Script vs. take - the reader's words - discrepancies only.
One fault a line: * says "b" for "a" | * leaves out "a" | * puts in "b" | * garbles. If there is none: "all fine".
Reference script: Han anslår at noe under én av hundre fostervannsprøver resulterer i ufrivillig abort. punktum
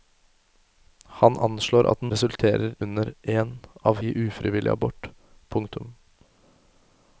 * says "resulterer" for "noe"
* leaves out "hundre fostervannsprøver resulterer"